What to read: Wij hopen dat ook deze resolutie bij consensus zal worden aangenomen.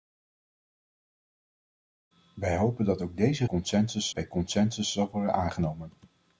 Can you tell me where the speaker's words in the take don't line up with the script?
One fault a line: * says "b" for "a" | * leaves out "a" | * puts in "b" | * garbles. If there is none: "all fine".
* says "consensus" for "resolutie"